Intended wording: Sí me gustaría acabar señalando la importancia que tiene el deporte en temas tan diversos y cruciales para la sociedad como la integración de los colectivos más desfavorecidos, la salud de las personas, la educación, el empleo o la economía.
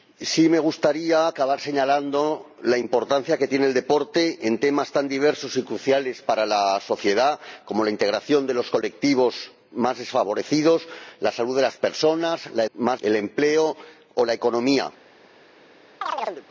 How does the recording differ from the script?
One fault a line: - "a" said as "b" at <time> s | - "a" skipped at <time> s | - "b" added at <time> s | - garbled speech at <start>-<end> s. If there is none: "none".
- "educación" said as "más" at 12.7 s